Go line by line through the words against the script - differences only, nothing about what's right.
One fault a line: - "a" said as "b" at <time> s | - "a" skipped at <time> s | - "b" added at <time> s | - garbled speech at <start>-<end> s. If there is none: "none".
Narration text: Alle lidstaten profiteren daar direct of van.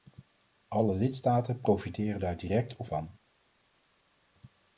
none